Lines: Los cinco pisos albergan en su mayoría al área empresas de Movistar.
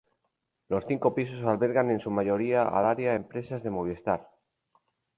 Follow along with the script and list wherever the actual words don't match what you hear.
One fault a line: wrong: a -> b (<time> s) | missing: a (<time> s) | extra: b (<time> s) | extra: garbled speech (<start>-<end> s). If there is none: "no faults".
no faults